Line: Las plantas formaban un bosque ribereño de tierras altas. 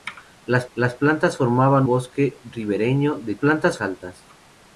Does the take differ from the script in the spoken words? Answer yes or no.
yes